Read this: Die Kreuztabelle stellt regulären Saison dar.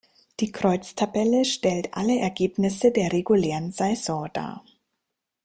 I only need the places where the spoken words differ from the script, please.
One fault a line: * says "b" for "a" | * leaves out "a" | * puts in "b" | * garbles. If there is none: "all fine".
* puts in "alle Ergebnisse der"